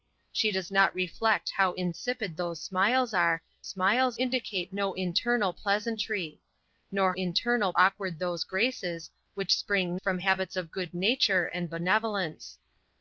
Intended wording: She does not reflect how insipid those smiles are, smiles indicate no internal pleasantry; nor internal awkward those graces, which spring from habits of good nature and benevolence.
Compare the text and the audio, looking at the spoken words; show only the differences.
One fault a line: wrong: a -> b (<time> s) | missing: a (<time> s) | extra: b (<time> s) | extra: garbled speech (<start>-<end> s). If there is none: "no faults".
no faults